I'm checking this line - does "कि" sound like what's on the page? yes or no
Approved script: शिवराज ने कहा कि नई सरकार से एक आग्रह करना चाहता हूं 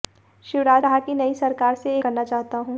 yes